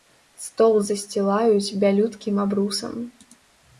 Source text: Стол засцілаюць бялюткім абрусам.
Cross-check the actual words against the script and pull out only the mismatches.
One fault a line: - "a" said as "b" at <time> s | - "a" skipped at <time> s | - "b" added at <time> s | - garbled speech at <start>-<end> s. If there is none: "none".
none